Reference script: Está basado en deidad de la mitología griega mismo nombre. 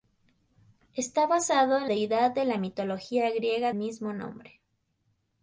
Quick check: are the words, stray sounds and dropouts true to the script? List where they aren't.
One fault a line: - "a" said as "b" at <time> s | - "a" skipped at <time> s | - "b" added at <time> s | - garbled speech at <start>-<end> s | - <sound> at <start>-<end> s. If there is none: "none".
none